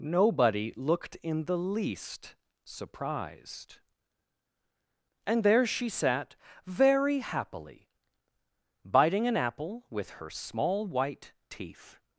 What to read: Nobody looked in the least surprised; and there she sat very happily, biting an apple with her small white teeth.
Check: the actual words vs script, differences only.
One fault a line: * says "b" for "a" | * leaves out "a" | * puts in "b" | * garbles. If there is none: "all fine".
all fine